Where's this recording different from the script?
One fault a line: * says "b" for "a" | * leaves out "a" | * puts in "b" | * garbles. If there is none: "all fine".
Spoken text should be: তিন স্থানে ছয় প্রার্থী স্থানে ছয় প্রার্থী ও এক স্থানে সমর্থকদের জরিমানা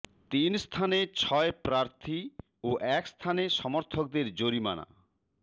* leaves out "স্থানে ছয় প্রার্থী"